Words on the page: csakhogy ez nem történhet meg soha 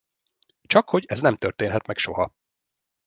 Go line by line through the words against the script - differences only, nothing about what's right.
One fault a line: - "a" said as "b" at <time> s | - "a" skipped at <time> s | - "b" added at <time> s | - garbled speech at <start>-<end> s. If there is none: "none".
none